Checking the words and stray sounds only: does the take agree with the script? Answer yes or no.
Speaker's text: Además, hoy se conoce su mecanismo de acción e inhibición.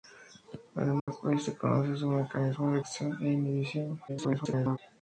no